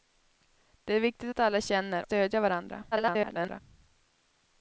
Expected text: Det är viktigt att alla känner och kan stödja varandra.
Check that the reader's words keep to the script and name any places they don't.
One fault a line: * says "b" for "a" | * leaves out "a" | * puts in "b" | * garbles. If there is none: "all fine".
* leaves out "och kan"
* garbles